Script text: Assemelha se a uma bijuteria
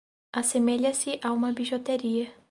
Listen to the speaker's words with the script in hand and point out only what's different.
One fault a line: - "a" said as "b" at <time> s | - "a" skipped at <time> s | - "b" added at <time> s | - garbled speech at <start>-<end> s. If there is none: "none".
none